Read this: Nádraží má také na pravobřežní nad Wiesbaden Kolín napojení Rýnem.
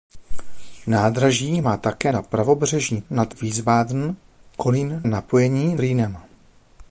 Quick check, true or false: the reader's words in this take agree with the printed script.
true